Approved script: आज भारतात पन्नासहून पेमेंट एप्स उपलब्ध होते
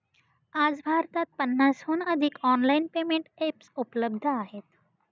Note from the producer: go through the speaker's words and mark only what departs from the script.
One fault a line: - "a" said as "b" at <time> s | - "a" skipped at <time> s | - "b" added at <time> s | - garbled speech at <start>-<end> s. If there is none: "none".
- "अधिक ऑनलाइन" added at 2.0 s
- "होते" said as "आहेत" at 4.3 s